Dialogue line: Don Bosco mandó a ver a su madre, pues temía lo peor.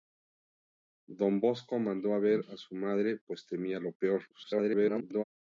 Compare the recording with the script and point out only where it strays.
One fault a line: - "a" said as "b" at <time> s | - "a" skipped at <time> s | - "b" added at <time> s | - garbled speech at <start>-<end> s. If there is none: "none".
- garbled speech at 4.3-5.2 s